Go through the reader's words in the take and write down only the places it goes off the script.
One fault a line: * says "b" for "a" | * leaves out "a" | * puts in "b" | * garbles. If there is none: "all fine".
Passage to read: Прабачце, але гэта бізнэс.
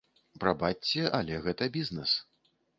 all fine